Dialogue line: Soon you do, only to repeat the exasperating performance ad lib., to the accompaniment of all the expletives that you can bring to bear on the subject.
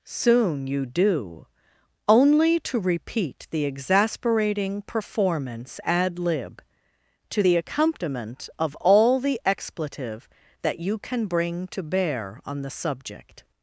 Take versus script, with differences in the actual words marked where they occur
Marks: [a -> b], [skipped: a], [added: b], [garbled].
Soon you do, only to repeat the exasperating performance ad lib., to the accompaniment of all the [expletives -> expletive] that you can bring to bear on the subject.